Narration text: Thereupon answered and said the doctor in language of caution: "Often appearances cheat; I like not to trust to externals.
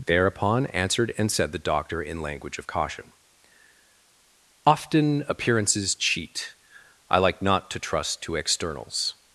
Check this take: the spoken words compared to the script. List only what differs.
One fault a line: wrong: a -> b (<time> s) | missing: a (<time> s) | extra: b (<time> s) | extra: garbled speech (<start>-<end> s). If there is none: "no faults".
no faults